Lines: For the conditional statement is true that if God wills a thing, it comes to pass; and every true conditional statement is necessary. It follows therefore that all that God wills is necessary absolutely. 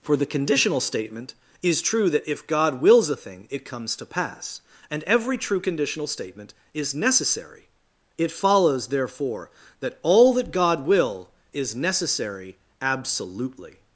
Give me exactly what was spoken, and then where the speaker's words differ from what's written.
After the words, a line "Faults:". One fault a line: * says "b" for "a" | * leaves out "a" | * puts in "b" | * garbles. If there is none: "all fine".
For the conditional statement is true that if God wills a thing, it comes to pass; and every true conditional statement is necessary. It follows therefore that all that God will is necessary absolutely.
Faults:
* says "will" for "wills"